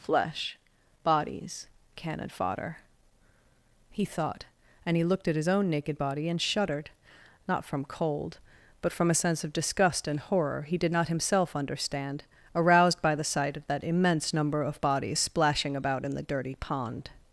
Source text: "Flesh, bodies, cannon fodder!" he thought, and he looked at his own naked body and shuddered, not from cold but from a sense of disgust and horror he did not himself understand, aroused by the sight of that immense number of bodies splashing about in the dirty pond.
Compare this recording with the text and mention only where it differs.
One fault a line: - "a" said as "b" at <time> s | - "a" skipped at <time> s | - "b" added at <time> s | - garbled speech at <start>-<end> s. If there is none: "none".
none